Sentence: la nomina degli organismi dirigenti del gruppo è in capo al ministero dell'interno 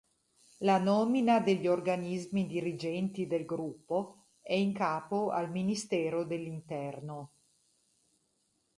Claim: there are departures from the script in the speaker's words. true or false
false